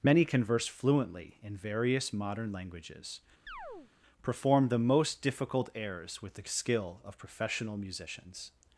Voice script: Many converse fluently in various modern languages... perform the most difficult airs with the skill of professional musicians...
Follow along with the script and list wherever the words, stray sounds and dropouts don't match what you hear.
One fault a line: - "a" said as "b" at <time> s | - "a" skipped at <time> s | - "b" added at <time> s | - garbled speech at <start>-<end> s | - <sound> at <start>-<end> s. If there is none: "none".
- chirp at 3.5-3.9 s